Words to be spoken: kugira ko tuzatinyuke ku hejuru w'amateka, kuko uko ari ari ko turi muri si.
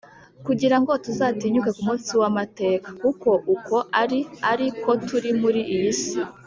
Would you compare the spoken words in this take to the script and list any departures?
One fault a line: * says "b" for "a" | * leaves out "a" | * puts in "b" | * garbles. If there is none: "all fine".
* says "ngo" for "ko"
* says "munsi" for "hejuru"
* puts in "iyi"